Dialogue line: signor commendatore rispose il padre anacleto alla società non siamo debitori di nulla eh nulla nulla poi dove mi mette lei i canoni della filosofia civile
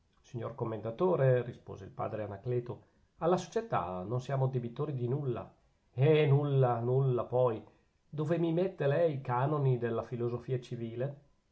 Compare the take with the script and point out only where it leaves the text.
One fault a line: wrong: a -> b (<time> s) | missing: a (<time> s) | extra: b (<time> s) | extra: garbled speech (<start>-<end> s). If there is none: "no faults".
no faults